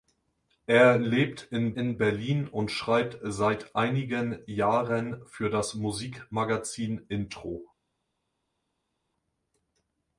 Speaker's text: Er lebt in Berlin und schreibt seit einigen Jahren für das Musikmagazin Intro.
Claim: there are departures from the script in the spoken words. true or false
true